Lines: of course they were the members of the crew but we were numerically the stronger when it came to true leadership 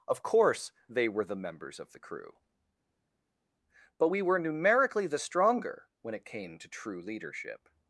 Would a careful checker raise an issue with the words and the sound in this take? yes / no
no